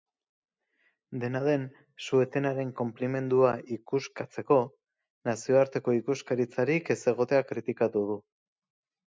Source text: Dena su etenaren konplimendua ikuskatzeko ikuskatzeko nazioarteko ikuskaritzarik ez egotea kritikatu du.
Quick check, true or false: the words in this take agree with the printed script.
false